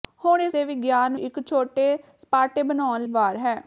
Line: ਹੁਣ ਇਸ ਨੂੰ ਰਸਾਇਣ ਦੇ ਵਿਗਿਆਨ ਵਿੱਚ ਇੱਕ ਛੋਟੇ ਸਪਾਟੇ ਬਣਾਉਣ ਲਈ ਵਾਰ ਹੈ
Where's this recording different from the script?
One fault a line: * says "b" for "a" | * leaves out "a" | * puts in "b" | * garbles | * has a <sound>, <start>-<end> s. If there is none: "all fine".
* leaves out "ਨੂੰ ਰਸਾਇਣ"
* leaves out "ਵਿੱਚ"
* leaves out "ਲਈ"